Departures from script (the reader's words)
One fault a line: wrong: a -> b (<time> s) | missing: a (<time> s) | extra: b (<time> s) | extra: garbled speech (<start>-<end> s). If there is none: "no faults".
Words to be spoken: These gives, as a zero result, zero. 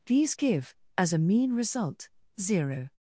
wrong: gives -> give (0.3 s)
wrong: zero -> mean (1.2 s)